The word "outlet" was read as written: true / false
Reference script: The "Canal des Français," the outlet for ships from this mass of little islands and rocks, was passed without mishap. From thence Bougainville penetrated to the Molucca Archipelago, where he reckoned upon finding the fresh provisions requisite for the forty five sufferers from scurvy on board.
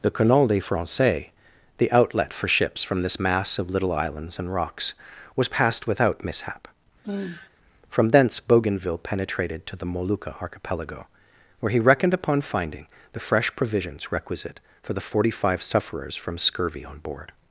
true